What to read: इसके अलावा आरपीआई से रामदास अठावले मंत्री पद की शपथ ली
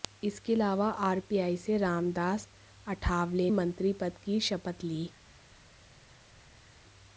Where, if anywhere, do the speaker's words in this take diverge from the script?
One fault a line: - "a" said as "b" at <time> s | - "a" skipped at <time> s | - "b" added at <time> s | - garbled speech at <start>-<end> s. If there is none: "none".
none